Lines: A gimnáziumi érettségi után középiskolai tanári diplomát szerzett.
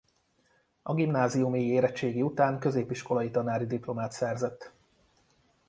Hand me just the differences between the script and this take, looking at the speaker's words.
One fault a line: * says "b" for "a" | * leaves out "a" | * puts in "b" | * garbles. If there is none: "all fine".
all fine